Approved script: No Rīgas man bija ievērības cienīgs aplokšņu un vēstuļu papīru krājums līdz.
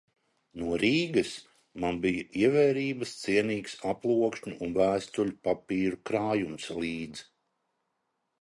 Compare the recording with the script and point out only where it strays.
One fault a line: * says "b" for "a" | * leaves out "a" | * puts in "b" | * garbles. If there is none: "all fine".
all fine